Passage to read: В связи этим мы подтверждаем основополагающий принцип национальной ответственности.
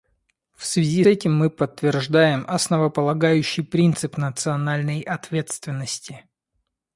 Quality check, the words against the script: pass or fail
pass